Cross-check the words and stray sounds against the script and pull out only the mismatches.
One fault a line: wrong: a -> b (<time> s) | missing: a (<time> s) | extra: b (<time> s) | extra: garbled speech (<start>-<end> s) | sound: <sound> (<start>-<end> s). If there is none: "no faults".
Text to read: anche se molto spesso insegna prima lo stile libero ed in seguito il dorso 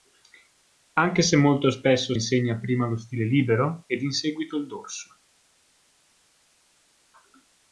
no faults